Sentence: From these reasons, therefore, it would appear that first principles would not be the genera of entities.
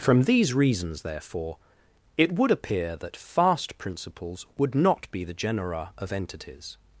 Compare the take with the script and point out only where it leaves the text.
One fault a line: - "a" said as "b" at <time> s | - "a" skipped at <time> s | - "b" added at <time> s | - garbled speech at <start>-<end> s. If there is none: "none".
- "first" said as "fast" at 3.1 s